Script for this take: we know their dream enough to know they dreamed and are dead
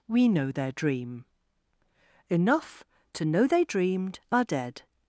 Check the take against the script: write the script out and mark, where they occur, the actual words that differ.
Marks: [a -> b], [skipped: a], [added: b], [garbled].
we know their dream enough to know they dreamed [skipped: and] are dead